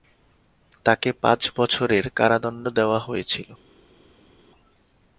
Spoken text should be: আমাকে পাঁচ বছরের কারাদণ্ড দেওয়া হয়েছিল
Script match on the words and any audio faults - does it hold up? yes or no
no